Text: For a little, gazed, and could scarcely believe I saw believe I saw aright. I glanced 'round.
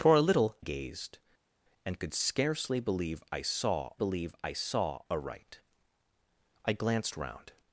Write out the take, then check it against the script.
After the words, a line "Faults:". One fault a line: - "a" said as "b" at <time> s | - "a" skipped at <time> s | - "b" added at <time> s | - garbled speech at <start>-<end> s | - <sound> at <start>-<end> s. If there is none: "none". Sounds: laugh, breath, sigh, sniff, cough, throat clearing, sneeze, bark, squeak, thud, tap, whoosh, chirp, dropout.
For a little, gazed, and could scarcely believe I saw believe I saw aright. I glanced 'round.
Faults:
none